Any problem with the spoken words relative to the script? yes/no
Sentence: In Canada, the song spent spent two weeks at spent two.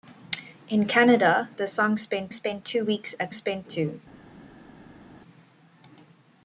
no